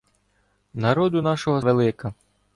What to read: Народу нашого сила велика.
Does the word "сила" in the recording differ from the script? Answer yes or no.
yes